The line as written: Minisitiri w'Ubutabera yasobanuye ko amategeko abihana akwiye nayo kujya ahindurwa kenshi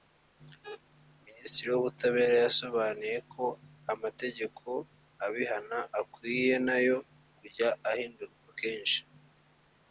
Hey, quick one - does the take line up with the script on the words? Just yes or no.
yes